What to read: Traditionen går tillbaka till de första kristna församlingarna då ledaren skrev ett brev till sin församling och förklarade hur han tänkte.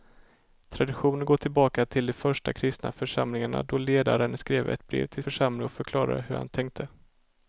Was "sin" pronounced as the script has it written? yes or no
no